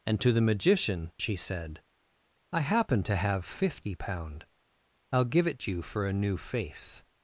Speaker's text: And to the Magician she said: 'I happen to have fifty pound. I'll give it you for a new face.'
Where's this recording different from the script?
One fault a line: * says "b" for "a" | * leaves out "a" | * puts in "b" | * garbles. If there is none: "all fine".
all fine